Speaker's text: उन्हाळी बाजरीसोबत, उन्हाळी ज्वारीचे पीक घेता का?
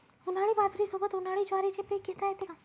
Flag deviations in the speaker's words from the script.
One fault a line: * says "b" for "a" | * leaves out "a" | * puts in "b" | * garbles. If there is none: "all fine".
* puts in "येते"